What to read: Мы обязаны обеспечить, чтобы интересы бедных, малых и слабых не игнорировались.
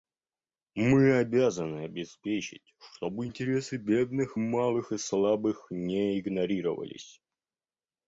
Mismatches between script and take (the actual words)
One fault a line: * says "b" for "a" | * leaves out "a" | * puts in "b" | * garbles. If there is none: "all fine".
all fine